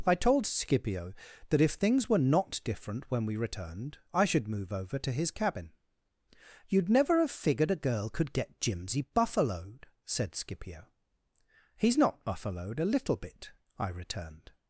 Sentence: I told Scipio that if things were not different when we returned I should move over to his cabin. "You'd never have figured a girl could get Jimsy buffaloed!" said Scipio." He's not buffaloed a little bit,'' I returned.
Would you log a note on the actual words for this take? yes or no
no